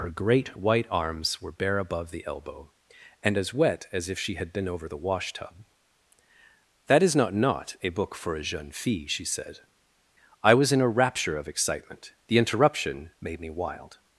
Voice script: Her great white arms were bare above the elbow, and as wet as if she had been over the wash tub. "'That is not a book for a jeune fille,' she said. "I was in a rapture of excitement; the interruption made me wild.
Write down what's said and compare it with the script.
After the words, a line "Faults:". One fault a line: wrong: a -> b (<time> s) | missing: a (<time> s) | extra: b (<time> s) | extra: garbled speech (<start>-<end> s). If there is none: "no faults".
Her great white arms were bare above the elbow, and as wet as if she had been over the wash tub. "'That is not not a book for a jeune fille,' she said. "I was in a rapture of excitement; the interruption made me wild.
Faults:
extra: not (7.3 s)